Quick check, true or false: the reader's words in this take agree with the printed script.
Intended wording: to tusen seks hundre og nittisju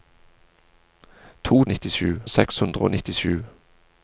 false